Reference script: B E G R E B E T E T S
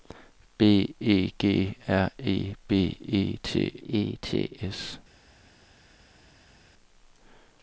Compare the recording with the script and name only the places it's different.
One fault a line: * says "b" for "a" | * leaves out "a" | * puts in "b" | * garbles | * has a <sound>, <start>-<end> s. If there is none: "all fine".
all fine